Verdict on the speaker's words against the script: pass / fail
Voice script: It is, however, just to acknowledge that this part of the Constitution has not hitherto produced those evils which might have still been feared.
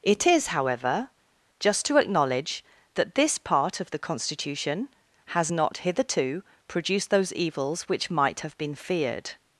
fail